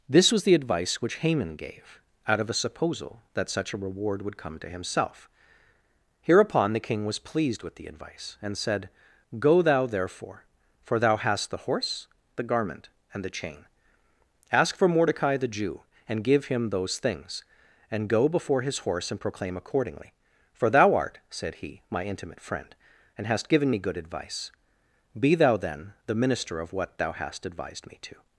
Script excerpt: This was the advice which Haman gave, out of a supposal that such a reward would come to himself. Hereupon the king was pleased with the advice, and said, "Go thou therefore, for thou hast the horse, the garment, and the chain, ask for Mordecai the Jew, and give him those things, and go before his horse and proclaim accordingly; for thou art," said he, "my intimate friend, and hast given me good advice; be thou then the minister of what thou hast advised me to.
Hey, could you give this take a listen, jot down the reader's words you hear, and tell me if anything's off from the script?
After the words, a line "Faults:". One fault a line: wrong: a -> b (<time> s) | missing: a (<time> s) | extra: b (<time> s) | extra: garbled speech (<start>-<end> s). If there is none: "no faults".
This was the advice which Haman gave, out of a supposal that such a reward would come to himself. Hereupon the king was pleased with the advice, and said, "Go thou therefore, for thou hast the horse, the garment, and the chain, ask for Mordecai the Jew, and give him those things, and go before his horse and proclaim accordingly; for thou art," said he, "my intimate friend, and hast given me good advice; be thou then the minister of what thou hast advised me to.
Faults:
no faults